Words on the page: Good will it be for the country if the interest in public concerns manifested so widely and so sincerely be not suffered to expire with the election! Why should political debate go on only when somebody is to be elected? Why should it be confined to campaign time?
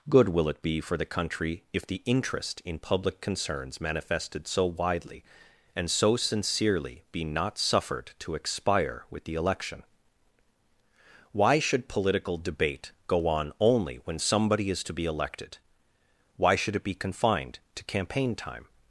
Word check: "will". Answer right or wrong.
right